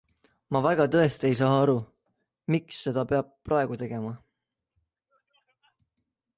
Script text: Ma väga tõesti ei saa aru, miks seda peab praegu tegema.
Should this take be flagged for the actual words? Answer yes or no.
no